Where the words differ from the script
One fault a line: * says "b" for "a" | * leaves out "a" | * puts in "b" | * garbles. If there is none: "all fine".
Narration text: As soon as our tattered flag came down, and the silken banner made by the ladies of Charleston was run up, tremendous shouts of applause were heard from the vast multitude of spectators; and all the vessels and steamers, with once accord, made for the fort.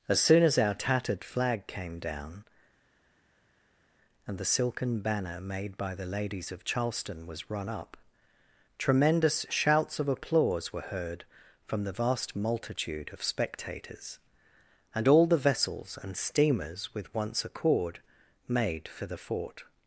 all fine